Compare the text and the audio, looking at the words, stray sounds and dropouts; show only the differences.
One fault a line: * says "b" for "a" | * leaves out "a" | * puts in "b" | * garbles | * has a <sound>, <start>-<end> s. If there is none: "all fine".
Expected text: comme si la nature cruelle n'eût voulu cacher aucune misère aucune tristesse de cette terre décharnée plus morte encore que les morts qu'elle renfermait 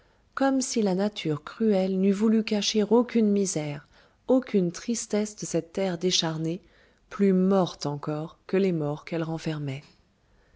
all fine